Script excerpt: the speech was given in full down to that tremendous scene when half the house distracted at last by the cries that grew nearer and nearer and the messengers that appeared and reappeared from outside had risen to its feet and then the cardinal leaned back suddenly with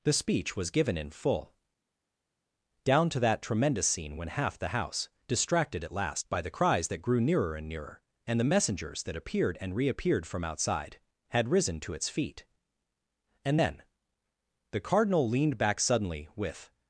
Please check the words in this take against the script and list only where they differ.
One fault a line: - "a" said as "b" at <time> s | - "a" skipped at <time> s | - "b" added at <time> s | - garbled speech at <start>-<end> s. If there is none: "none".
none